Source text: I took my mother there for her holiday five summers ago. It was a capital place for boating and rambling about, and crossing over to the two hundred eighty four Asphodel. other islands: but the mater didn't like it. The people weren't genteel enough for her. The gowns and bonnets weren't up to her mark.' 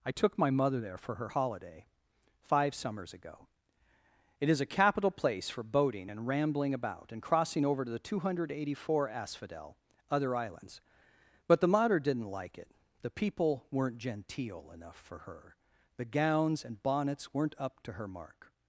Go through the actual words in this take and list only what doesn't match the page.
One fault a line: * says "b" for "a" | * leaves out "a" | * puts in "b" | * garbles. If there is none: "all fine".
* says "is" for "was"